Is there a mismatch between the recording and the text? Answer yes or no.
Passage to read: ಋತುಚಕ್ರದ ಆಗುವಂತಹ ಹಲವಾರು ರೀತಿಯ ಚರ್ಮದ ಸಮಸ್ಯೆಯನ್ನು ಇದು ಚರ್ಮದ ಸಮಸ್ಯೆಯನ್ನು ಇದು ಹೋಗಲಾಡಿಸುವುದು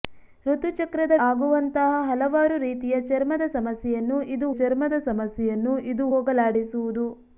no